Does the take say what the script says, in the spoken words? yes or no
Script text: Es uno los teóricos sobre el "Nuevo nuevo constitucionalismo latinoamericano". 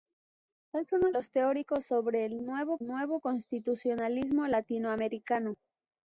yes